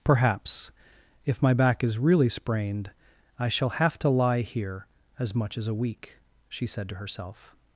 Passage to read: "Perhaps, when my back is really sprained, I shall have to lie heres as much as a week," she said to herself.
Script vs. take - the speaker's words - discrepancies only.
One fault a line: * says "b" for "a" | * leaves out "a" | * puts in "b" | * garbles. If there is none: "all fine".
* says "if" for "when"
* says "here" for "heres"